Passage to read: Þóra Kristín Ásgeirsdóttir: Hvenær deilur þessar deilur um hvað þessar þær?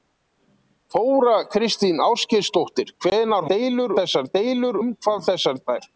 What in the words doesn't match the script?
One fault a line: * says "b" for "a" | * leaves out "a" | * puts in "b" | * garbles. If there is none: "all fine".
all fine